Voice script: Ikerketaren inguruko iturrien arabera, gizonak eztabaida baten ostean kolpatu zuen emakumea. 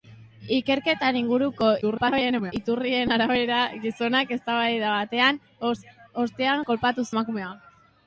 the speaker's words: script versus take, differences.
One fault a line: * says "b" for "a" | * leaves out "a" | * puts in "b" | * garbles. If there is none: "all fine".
* garbles
* leaves out "zuen"